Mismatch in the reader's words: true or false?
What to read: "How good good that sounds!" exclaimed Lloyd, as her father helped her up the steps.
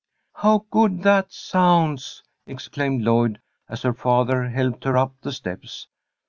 true